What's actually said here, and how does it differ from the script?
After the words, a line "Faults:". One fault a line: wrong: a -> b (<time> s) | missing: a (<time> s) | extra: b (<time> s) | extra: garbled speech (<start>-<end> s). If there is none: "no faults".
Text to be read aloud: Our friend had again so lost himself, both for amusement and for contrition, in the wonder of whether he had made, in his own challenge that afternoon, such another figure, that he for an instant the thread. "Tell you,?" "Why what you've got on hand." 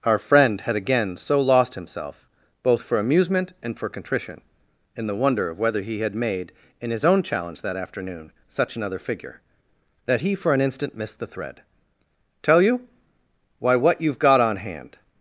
Our friend had again so lost himself, both for amusement and for contrition, in the wonder of whether he had made, in his own challenge that afternoon, such another figure, that he for an instant missed the thread. "Tell you,?" "Why what you've got on hand."
Faults:
extra: missed (11.0 s)